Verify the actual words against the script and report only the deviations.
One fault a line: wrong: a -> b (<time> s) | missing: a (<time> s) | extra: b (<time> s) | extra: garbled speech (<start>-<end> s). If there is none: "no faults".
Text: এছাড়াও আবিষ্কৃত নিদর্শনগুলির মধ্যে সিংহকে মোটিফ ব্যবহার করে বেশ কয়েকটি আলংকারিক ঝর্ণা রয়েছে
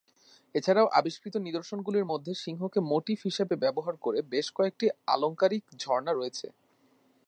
extra: হিসাবে (3.2 s)